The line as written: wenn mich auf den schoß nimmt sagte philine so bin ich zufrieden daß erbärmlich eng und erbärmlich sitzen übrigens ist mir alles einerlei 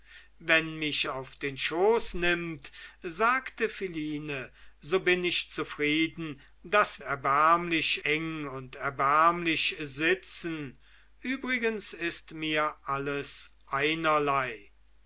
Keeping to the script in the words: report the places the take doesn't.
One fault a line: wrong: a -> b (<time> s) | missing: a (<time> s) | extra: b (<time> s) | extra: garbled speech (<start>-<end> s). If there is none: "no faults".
no faults